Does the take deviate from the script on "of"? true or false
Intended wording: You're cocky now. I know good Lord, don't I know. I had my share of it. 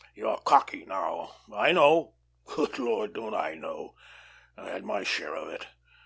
false